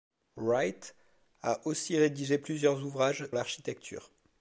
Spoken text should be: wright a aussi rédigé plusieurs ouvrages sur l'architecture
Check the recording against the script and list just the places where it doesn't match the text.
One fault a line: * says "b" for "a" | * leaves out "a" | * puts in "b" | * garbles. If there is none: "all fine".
* leaves out "sur"